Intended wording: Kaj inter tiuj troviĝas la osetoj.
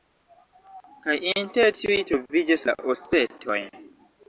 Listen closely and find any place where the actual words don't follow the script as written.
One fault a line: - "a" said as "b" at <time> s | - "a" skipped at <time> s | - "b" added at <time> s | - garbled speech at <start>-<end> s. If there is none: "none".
none